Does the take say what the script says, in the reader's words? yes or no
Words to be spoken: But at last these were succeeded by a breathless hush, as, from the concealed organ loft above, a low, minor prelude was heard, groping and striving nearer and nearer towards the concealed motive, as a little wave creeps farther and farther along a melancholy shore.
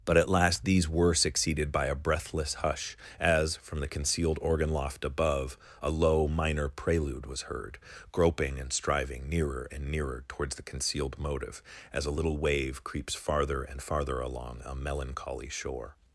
yes